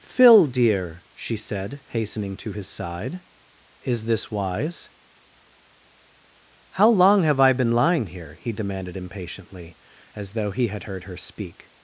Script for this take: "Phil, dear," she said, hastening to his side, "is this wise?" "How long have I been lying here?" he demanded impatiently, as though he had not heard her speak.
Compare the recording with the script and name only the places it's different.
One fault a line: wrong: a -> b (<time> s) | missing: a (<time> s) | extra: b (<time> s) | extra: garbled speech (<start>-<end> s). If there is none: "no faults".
missing: not (10.8 s)